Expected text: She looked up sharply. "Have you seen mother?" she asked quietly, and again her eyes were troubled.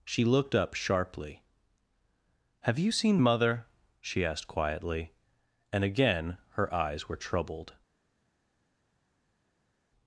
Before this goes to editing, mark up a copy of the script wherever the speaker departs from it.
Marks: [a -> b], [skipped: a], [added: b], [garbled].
She looked up sharply. "Have you seen mother?" she asked quietly, and again her eyes were troubled.